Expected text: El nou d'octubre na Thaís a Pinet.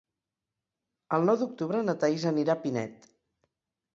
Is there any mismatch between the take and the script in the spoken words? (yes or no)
yes